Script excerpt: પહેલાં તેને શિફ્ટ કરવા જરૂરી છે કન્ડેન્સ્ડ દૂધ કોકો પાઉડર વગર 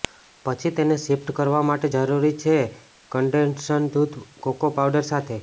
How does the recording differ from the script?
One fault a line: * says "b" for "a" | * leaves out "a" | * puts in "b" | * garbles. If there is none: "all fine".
* says "પછી" for "પહેલાં"
* puts in "માટે"
* says "સાથે" for "વગર"